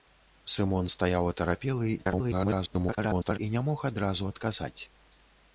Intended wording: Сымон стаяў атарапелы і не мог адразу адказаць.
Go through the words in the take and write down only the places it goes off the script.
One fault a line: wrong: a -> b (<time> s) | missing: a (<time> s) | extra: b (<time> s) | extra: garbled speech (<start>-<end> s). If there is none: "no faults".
extra: garbled speech (2.0-3.4 s)